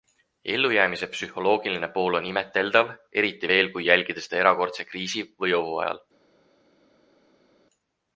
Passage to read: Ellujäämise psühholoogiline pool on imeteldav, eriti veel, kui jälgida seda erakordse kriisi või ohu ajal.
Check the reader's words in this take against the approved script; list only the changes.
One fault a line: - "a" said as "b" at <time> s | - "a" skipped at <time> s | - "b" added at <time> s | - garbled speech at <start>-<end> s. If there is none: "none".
none